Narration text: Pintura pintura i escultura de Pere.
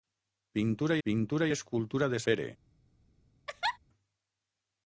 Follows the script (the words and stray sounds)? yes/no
no